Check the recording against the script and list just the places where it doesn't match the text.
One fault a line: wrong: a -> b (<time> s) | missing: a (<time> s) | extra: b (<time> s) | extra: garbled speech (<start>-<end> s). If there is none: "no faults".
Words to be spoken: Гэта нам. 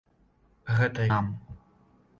no faults